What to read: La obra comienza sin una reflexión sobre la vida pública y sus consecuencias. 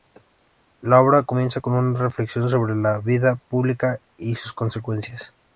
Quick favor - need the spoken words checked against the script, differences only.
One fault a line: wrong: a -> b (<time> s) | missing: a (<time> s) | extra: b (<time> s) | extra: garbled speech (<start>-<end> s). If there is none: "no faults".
wrong: sin -> con (1.6 s)